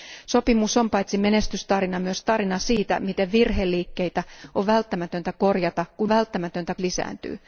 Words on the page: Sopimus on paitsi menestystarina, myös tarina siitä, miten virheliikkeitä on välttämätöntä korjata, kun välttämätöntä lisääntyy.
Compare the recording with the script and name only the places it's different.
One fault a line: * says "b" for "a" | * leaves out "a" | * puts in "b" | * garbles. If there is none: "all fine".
all fine